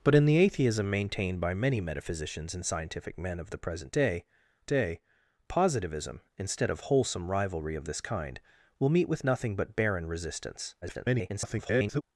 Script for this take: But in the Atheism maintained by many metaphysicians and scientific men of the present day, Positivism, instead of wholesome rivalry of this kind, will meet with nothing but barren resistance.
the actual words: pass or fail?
fail